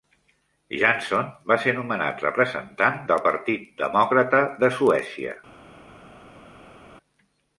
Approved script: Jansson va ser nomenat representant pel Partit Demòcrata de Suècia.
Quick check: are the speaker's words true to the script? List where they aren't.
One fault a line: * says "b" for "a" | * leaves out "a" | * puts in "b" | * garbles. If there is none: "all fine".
* says "del" for "pel"